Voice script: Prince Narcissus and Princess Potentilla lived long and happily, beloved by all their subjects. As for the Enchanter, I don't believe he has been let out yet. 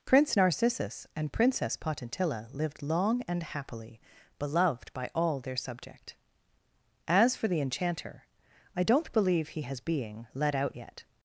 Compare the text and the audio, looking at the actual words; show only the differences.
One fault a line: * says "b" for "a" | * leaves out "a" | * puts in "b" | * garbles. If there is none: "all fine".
* says "subject" for "subjects"
* says "being" for "been"